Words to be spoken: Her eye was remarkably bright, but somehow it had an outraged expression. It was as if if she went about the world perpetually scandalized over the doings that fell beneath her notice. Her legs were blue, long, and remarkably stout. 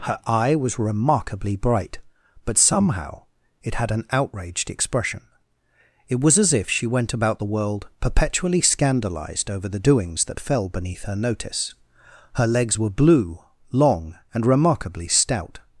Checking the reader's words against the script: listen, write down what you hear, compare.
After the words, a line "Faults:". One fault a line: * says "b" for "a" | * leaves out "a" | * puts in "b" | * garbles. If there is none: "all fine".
Her eye was remarkably bright, but somehow it had an outraged expression. It was as if she went about the world perpetually scandalized over the doings that fell beneath her notice. Her legs were blue, long, and remarkably stout.
Faults:
* leaves out "if"